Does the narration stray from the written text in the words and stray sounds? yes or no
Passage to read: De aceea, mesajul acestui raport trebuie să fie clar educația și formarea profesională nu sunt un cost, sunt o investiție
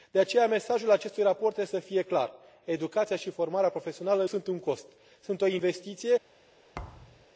yes